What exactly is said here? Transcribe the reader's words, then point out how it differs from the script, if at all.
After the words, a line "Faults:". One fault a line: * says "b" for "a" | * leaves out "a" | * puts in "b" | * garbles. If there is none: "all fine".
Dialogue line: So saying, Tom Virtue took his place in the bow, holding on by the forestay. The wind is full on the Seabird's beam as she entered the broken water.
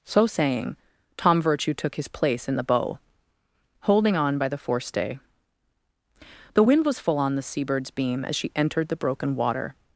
So saying, Tom Virtue took his place in the bow, holding on by the forestay. The wind was full on the Seabird's beam as she entered the broken water.
Faults:
* says "was" for "is"